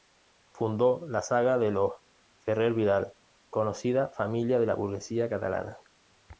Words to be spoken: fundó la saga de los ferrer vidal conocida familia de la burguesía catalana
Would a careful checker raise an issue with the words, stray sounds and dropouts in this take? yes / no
no